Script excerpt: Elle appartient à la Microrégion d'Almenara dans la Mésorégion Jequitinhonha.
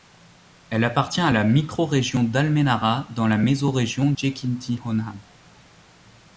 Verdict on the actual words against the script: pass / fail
pass